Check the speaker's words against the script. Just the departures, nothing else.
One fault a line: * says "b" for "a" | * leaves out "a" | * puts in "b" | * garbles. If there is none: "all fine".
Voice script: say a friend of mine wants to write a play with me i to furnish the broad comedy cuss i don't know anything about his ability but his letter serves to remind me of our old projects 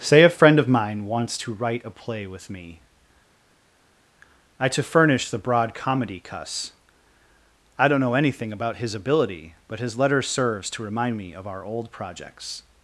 all fine